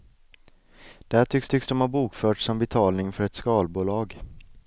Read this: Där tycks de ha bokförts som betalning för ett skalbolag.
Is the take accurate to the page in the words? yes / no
no